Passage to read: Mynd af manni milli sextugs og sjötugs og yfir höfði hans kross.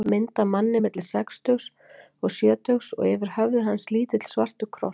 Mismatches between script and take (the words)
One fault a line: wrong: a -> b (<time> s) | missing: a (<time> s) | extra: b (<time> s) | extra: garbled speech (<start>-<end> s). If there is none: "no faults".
extra: lítill svartur (3.9 s)